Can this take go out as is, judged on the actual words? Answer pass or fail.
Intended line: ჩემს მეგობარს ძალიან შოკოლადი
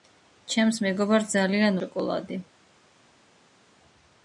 pass